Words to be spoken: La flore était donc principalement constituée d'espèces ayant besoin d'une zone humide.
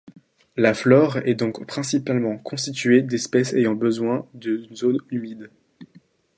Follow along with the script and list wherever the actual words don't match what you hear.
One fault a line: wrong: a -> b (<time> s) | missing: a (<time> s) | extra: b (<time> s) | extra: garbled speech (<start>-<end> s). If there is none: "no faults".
wrong: était -> est (1.2 s)